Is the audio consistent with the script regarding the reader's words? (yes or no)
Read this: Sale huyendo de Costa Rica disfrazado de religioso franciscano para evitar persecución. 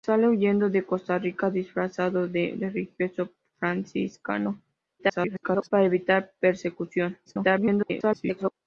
no